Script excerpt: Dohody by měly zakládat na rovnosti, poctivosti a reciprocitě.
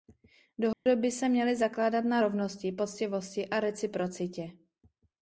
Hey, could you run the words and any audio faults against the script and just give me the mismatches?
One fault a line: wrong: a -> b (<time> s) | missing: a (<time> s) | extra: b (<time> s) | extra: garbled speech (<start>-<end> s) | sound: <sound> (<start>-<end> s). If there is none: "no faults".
sound: dropout (0.7-0.9 s)
extra: se (1.1 s)